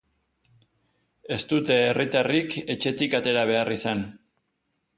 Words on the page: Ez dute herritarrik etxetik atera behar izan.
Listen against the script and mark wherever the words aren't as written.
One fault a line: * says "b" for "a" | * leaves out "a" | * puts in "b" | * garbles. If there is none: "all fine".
all fine